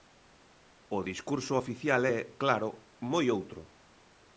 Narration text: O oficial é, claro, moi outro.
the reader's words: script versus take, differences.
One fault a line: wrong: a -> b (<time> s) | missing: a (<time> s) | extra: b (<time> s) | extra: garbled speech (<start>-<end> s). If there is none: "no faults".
extra: discurso (1.1 s)